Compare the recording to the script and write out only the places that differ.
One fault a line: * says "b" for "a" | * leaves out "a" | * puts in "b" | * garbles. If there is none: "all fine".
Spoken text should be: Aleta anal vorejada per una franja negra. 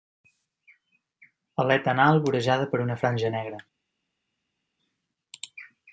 all fine